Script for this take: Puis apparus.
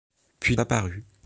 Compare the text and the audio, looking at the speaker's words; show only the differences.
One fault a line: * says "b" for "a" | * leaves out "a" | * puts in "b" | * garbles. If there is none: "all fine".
all fine